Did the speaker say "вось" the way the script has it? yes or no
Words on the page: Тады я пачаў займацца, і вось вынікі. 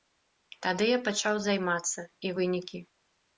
no